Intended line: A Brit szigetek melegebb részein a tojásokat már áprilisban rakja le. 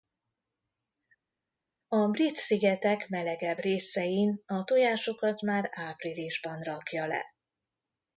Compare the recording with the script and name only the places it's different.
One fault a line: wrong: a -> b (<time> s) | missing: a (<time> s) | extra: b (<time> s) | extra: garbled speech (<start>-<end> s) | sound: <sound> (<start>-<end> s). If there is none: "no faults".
no faults